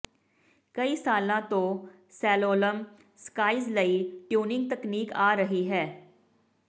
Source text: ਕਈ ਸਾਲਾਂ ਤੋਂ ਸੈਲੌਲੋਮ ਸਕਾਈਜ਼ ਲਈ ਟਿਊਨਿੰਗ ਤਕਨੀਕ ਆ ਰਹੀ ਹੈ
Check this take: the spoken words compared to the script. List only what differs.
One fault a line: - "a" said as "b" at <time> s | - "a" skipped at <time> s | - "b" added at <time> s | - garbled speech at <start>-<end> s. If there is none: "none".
none